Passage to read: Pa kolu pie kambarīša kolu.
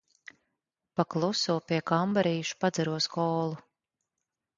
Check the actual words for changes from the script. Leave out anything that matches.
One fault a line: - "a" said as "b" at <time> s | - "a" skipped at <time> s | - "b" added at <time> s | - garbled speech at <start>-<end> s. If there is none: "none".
- "kolu" said as "kluso" at 1.1 s
- "padzeros" added at 2.6 s